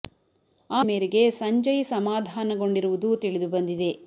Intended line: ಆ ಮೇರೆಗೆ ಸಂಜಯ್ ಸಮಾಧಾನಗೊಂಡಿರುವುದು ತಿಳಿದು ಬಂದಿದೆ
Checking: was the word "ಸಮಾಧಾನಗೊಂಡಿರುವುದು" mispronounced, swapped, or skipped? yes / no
no